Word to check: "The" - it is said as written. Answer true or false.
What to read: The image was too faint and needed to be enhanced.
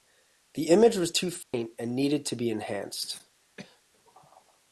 true